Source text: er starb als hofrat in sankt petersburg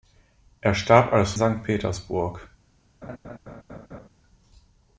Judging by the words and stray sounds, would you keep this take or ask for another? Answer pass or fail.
fail